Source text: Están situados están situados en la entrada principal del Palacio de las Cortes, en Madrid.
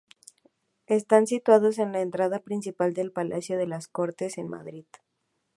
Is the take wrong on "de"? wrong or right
right